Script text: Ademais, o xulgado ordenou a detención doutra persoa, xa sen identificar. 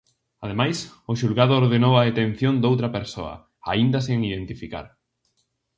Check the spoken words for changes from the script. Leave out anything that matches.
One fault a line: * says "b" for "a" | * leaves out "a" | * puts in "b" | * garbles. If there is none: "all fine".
* says "aínda" for "xa"